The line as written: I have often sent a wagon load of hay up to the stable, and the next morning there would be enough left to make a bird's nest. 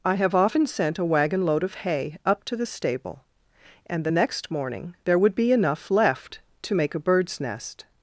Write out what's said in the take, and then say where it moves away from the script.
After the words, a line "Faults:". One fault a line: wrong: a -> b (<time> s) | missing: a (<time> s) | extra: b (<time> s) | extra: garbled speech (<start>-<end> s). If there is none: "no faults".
I have often sent a wagon load of hay up to the stable, and the next morning there would be enough left to make a bird's nest.
Faults:
no faults